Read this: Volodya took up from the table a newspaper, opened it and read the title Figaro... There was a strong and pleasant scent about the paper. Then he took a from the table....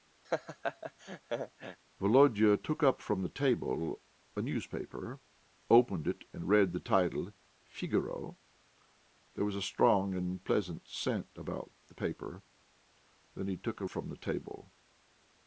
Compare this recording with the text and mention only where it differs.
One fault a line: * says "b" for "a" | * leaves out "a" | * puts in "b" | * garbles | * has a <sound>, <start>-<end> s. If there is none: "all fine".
* has a laugh, 0.2-1.8 s